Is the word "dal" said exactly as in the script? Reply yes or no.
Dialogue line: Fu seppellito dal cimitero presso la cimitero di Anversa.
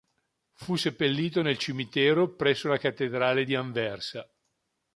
no